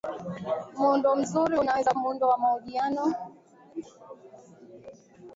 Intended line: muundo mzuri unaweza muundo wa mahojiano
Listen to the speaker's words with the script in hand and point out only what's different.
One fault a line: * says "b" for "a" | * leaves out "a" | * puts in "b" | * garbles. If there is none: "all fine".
all fine